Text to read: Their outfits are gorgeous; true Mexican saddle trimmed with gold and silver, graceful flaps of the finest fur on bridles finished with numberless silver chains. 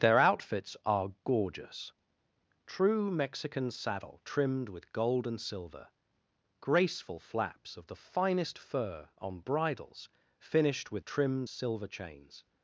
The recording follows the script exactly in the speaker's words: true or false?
false